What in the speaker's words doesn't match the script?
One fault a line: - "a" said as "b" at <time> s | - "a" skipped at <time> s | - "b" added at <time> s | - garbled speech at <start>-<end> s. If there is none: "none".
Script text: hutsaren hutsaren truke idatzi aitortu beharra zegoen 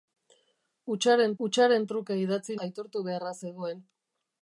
none